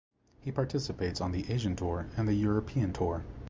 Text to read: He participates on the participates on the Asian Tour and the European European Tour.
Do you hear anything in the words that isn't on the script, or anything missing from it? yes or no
yes